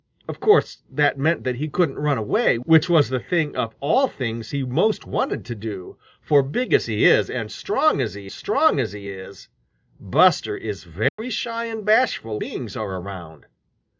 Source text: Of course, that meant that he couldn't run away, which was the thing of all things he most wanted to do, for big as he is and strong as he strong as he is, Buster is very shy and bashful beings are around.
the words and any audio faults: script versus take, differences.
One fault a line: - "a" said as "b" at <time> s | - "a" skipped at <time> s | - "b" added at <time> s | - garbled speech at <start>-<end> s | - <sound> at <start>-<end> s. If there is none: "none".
- dropout at 11.1-11.2 s